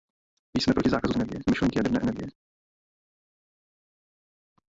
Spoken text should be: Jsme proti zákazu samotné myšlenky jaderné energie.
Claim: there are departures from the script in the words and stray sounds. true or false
true